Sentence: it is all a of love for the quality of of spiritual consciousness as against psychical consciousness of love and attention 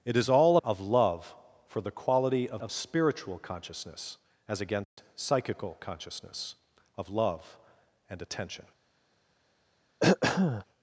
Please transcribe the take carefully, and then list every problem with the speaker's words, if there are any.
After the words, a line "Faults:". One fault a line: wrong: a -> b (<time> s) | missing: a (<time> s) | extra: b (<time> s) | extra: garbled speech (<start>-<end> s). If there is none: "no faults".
it is all a of love for the quality of of spiritual consciousness as against psychical consciousness of love and attention
Faults:
no faults